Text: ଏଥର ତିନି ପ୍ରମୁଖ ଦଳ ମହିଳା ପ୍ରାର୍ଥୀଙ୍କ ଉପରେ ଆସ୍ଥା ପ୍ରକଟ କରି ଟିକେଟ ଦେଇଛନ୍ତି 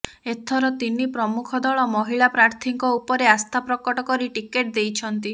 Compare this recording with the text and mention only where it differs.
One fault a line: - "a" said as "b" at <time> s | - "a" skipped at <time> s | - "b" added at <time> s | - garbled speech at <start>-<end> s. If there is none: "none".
none